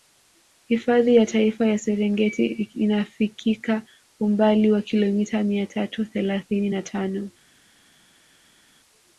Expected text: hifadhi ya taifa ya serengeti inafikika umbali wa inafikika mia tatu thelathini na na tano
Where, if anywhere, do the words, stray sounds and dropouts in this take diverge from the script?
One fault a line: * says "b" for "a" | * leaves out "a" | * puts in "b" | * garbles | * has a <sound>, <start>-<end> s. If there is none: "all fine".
* says "kilomita" for "inafikika"
* leaves out "na"